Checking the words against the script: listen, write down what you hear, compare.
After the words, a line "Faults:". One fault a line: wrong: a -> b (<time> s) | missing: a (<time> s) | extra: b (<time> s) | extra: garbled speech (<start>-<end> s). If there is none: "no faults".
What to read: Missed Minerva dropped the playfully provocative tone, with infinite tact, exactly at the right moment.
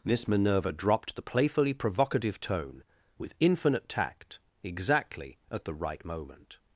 Miss Minerva dropped the playfully provocative tone, with infinite tact, exactly at the right moment.
Faults:
wrong: Missed -> Miss (0.0 s)